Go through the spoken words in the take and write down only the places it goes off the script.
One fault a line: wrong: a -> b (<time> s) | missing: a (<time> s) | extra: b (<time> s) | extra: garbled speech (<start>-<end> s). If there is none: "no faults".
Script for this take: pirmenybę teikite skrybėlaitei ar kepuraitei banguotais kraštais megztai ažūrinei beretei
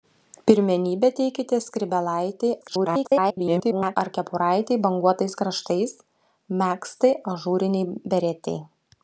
extra: garbled speech (2.6-4.0 s)